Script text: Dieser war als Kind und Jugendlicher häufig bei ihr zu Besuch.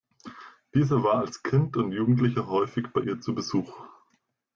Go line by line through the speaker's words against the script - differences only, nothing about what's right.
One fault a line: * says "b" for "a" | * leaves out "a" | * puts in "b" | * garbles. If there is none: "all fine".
all fine